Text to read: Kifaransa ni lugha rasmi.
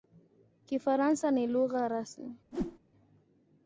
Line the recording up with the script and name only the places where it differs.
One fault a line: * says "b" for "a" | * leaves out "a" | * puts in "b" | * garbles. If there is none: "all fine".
all fine